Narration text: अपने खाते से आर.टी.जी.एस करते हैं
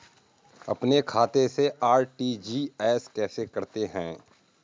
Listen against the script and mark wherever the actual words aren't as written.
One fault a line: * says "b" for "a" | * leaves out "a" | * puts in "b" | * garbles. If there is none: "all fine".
* puts in "कैसे"